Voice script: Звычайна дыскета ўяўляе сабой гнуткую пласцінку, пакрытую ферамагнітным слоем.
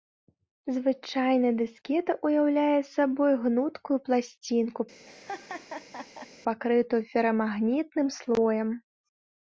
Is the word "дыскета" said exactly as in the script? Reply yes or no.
yes